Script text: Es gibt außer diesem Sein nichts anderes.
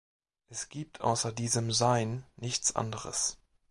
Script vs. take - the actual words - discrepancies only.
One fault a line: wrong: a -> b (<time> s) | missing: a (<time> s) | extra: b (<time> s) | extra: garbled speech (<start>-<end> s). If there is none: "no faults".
no faults